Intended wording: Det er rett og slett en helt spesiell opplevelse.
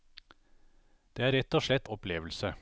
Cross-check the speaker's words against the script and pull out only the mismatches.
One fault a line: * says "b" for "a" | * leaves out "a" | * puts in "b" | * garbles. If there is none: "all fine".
* leaves out "en helt spesiell"